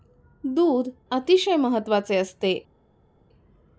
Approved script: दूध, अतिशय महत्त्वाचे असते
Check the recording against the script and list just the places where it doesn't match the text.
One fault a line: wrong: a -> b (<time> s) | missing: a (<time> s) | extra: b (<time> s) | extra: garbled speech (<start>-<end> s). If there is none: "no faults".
no faults